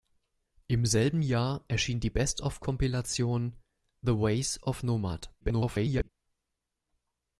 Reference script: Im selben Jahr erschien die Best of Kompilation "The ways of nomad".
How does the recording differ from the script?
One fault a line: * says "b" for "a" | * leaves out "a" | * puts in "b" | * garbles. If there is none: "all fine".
* garbles